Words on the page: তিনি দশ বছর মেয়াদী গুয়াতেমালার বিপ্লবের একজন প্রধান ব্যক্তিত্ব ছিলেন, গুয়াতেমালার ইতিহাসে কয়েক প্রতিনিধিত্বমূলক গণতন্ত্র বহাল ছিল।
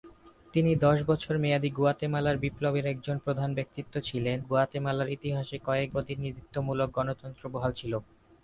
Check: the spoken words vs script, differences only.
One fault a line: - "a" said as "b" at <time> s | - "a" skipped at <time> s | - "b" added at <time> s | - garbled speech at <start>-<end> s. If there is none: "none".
none